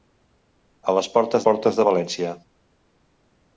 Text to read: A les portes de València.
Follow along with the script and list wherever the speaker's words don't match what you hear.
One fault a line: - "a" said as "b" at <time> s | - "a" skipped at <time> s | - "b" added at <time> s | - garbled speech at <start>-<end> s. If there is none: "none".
- "portes" added at 1.5 s